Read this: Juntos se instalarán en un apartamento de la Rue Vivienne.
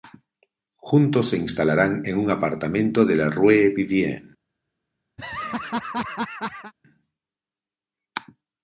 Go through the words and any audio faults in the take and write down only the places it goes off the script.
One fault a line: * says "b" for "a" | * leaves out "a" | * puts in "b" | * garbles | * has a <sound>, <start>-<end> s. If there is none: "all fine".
* has a laugh, 5.2-6.7 s